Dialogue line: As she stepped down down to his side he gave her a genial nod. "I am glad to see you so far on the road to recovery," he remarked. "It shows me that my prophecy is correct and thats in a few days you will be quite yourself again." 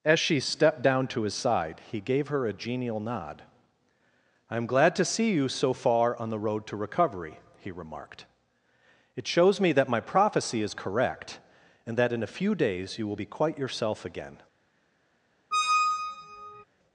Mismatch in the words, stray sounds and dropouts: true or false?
true